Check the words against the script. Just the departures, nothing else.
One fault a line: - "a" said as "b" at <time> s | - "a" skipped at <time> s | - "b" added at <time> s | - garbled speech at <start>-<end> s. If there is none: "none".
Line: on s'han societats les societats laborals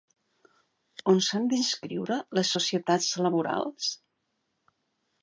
- "societats" said as "d'inscriure" at 1.5 s